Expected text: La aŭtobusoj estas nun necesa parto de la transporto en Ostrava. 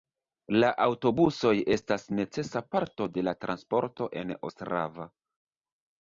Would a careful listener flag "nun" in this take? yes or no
yes